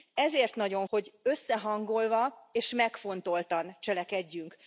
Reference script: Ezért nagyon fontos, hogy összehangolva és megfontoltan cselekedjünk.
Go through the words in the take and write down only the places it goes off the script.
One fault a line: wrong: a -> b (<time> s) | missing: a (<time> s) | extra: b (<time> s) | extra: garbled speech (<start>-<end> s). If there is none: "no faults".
missing: fontos (0.9 s)